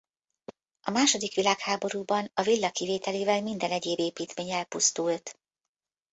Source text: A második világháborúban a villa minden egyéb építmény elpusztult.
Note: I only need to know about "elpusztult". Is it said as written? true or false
true